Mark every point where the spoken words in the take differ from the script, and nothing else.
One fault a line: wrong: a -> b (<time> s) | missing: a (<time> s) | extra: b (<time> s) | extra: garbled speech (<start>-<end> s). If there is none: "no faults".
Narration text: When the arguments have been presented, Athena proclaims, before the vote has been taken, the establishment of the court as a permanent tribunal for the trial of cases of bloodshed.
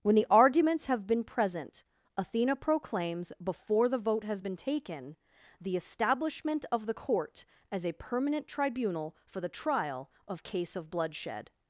wrong: presented -> present (1.2 s)
wrong: cases -> case (10.4 s)